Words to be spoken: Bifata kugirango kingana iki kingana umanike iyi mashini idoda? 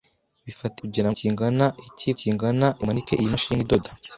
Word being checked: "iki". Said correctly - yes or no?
yes